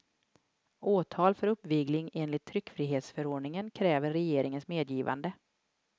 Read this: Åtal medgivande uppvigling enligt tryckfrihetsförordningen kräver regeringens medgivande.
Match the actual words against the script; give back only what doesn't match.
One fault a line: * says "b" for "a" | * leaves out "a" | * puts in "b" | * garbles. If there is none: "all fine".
* says "för" for "medgivande"